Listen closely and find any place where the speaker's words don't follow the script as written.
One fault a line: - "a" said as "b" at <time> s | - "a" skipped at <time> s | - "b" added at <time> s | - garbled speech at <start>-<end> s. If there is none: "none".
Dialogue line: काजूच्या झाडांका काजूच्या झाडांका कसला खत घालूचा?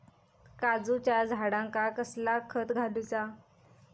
- "काजूच्या झाडांका" skipped at 1.9 s